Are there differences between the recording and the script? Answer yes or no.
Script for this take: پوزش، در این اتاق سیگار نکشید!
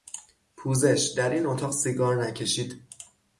no